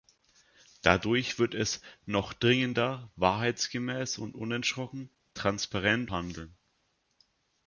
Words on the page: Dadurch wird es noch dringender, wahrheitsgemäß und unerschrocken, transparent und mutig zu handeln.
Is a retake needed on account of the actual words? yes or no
yes